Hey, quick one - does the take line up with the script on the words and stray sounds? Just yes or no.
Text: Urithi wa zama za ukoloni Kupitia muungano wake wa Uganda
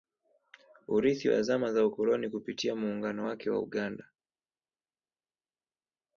yes